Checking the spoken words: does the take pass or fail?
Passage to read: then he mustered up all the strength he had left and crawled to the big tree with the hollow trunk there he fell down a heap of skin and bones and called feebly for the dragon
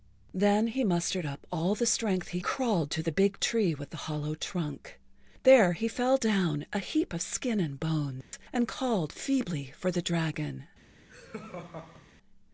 fail